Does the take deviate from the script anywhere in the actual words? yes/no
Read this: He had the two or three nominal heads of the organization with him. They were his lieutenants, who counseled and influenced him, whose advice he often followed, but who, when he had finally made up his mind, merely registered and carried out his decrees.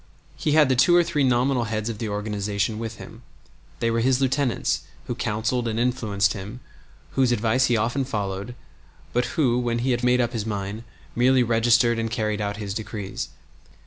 yes